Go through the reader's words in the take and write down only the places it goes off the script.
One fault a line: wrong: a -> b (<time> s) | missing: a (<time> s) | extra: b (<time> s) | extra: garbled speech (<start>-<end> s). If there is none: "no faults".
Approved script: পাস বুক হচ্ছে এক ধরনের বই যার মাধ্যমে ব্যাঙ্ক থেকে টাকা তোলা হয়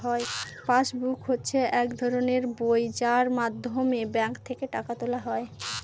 no faults